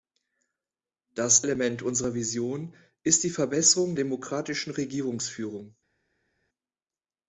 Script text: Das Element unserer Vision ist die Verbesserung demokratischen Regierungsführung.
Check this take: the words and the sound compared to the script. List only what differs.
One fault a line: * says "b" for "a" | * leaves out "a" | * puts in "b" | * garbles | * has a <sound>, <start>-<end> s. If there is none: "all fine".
all fine